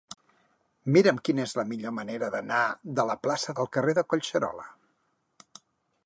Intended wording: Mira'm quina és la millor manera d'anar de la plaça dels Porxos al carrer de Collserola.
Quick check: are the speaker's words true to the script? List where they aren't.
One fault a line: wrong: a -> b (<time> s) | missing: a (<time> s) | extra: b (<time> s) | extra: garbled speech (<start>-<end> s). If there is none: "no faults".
missing: dels Porxos (3.6 s)